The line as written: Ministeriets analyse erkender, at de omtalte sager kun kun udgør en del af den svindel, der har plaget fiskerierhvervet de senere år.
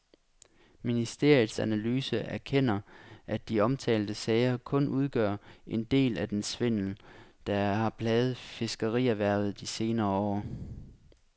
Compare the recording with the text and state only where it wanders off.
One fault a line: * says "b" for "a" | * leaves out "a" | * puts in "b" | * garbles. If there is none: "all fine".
* leaves out "kun"